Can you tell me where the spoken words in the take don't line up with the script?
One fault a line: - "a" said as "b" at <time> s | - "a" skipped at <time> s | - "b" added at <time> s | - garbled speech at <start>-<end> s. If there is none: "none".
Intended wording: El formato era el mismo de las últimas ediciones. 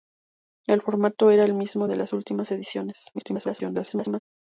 - garbled speech at 3.1-4.2 s